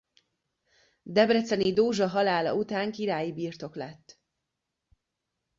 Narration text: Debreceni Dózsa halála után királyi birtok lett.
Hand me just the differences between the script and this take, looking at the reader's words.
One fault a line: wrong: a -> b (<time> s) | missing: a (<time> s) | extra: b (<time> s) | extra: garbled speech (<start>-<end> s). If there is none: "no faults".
no faults